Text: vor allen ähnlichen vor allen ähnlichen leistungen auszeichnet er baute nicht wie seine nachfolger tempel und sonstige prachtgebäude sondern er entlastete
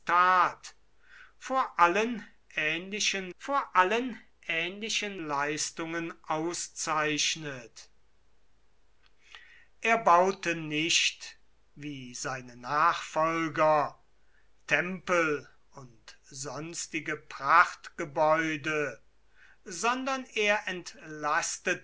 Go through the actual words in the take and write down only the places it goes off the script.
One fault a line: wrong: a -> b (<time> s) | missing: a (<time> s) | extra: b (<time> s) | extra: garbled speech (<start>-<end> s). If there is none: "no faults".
no faults